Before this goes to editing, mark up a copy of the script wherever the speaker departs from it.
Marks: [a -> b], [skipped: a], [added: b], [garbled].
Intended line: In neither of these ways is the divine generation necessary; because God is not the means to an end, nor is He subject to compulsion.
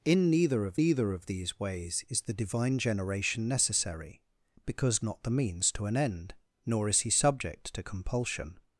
In neither of [added: neither of] these ways is the divine generation necessary; because [skipped: God is] not the means to an end, nor is He subject to compulsion.